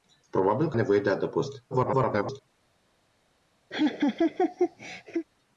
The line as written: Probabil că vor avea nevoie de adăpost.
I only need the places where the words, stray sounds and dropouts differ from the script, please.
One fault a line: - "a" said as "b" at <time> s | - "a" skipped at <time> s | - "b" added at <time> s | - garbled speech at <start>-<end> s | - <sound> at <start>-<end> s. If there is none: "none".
- "vor avea" skipped at 0.8 s
- garbled speech at 1.7-2.4 s
- laugh at 3.7-5.3 s